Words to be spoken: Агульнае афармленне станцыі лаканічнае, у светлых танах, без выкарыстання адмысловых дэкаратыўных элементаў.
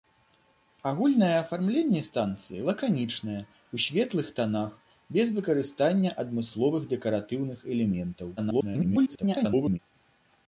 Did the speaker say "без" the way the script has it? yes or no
yes